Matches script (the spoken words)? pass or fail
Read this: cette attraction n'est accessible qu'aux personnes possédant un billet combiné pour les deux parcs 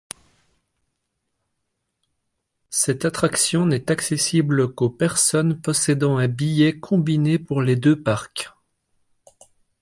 pass